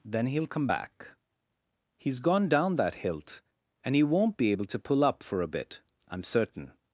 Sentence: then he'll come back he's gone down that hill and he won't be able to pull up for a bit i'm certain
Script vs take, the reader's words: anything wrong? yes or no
yes